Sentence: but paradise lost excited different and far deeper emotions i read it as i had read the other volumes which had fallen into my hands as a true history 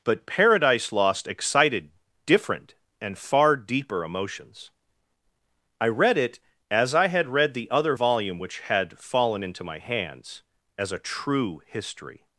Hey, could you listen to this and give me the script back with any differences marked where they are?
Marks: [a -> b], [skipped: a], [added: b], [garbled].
but paradise lost excited different and far deeper emotions i read it as i had read the other [volumes -> volume] which had fallen into my hands as a true history